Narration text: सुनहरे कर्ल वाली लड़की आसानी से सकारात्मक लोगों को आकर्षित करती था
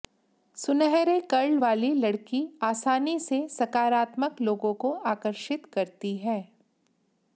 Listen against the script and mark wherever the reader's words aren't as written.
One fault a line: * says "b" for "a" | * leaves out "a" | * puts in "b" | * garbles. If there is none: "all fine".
* says "है" for "था"